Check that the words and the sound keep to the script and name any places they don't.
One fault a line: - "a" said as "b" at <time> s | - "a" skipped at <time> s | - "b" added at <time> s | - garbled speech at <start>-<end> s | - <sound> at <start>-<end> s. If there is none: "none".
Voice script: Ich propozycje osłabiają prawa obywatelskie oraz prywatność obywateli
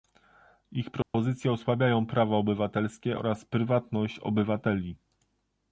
- dropout at 1.0-1.1 s